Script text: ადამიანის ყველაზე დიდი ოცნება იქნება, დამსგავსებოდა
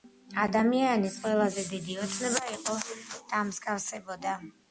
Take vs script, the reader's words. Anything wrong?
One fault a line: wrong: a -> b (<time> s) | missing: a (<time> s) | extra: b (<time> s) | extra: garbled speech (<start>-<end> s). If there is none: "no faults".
wrong: იქნება -> იყო (2.5 s)